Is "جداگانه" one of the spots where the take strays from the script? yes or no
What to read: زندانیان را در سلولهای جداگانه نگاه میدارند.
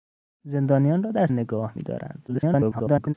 yes